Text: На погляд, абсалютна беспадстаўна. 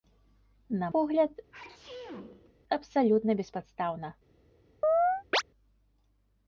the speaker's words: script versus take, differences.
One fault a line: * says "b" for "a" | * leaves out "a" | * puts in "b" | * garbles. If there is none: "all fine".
all fine